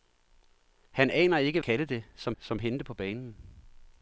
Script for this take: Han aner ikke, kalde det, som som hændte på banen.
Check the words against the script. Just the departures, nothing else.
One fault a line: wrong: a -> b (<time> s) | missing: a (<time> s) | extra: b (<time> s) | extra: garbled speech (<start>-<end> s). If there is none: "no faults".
no faults